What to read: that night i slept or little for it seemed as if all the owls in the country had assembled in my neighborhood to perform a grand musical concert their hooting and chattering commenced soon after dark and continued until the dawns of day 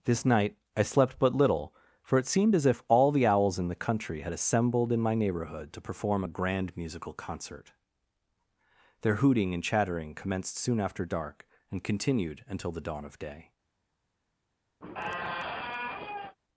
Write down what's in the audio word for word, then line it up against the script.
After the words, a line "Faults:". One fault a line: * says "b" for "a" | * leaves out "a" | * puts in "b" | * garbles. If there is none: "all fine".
this night i slept but little for it seemed as if all the owls in the country had assembled in my neighborhood to perform a grand musical concert their hooting and chattering commenced soon after dark and continued until the dawn of day
Faults:
* says "this" for "that"
* says "but" for "or"
* says "dawn" for "dawns"